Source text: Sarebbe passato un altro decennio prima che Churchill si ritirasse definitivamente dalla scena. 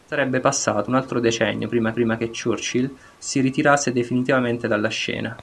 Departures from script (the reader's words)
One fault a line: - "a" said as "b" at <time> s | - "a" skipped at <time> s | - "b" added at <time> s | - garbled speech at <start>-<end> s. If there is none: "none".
- "prima" added at 1.9 s